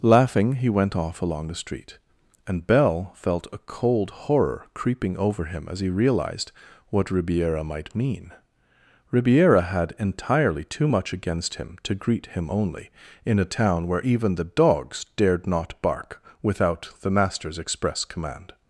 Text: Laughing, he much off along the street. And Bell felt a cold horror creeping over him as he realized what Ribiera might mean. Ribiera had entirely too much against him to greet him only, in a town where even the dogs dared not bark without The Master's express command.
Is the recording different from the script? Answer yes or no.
yes